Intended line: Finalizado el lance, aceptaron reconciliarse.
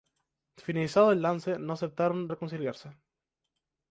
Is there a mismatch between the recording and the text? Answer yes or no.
yes